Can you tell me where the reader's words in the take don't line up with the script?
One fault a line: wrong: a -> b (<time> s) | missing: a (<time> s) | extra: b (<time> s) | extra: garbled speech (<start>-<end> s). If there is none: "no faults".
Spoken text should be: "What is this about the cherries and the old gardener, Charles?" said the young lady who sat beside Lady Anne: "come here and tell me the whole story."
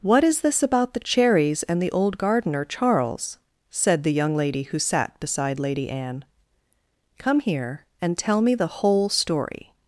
no faults